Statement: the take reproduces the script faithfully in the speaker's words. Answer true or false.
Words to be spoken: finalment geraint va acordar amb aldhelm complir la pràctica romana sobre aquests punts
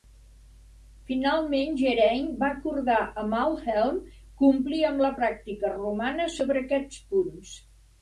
false